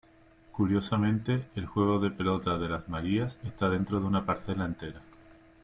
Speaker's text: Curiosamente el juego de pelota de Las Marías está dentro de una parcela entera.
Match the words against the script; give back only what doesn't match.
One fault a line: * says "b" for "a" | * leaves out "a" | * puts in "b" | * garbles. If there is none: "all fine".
all fine